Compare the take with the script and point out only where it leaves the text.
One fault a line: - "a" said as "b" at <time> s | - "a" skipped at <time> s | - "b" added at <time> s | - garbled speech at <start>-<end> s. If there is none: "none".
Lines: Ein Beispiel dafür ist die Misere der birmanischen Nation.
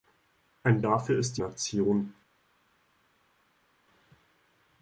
- "Beispiel" skipped at 0.8 s
- "Misere der birmanischen" skipped at 1.4 s